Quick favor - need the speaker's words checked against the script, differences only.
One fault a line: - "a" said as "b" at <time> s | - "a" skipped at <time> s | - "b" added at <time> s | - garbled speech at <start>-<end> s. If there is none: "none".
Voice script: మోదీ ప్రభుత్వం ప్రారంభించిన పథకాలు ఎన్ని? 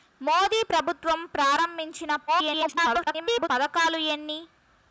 - garbled speech at 2.3-3.5 s